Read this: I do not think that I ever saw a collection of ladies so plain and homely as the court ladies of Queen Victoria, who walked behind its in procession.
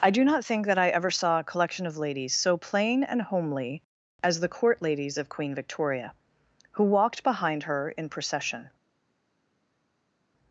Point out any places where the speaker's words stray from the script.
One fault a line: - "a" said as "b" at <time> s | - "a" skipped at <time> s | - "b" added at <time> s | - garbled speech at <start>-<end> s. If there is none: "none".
- "its" said as "her" at 7.6 s